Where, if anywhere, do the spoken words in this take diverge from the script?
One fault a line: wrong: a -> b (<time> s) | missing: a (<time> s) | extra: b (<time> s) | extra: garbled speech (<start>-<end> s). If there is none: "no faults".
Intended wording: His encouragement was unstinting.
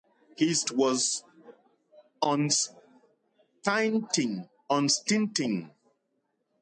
missing: encouragement (0.7 s)